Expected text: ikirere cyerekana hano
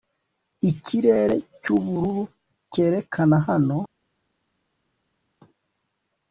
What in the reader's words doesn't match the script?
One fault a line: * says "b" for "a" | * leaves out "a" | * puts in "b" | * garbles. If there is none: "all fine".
* puts in "cyubururu"